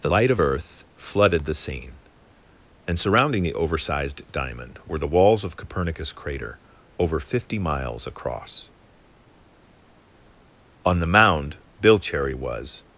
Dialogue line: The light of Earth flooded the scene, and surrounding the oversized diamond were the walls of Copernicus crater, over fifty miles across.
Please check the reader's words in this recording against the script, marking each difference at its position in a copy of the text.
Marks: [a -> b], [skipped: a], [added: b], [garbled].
The light of Earth flooded the scene, and surrounding the oversized diamond were the walls of Copernicus crater, over fifty miles across. [added: On the mound Bill Cherry was]